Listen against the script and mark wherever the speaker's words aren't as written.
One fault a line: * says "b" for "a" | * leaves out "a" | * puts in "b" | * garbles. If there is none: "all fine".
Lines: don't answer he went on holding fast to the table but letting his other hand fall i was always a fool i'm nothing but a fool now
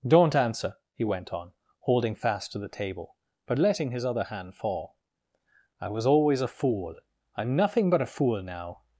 all fine